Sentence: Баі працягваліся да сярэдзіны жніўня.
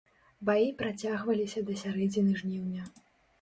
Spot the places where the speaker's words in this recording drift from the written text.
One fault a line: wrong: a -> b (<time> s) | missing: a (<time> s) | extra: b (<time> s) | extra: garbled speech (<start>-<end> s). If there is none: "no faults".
no faults